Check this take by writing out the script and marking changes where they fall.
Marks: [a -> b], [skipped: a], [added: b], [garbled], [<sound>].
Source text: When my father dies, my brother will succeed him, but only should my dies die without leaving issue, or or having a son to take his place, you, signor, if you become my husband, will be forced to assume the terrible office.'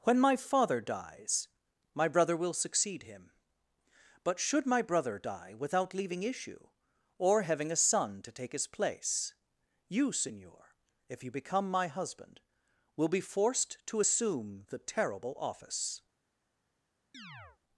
When my father dies, my brother will succeed him, but [skipped: only] should my [dies -> brother] die without leaving issue, or [skipped: or] having a son to take his place, you, signor, if you become my husband, will be forced to assume the terrible office.' [chirp]